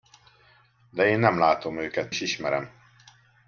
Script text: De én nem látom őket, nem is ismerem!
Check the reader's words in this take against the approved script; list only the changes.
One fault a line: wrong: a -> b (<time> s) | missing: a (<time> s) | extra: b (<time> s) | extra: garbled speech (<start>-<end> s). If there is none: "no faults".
missing: nem (2.1 s)